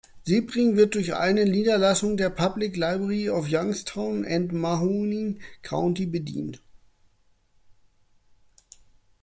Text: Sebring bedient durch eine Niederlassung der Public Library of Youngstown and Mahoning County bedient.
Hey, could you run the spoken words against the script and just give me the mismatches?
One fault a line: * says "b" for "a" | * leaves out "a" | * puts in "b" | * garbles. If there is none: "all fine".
* says "wird" for "bedient"